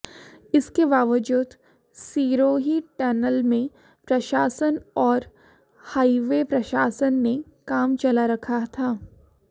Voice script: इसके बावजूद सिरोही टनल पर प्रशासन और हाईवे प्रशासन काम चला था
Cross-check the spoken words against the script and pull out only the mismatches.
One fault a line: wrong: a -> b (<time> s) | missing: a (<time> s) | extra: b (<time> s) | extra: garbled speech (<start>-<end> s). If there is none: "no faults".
wrong: पर -> में (3.4 s)
extra: ने (7.1 s)
extra: रखा (8.3 s)